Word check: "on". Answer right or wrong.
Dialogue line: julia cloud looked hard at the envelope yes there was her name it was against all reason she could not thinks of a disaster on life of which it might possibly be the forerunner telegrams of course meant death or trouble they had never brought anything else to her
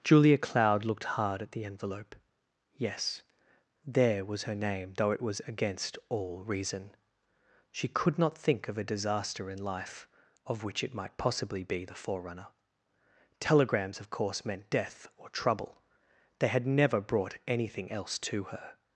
wrong